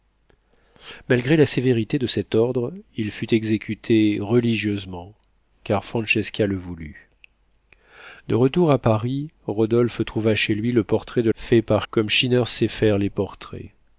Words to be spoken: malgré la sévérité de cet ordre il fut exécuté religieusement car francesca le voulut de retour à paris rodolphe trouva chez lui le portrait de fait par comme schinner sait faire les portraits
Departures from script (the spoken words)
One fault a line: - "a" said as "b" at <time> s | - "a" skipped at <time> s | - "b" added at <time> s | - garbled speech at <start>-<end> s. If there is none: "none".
none